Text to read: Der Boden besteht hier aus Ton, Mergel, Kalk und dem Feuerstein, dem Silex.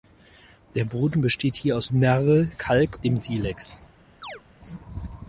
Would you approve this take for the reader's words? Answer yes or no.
no